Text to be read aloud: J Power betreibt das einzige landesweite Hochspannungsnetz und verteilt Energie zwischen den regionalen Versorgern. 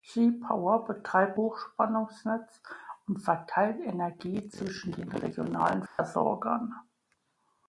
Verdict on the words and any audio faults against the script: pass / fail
fail